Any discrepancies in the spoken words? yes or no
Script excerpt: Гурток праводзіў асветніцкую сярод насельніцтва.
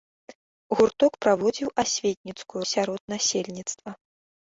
no